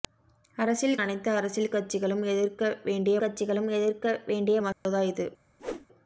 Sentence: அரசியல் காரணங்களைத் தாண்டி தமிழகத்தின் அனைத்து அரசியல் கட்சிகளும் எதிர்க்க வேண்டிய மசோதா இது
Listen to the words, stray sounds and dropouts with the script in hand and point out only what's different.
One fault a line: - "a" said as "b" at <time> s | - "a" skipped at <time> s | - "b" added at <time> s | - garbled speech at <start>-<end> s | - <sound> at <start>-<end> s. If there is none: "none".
- "காரணங்களைத் தாண்டி தமிழகத்தின் அனைத்து அரசியல்" said as "அனைத்து அரசியல் கட்சிகளும் எதிர்க்க வேண்டிய" at 1.0 s
- dropout at 4.7-4.9 s
- whoosh at 5.6-5.9 s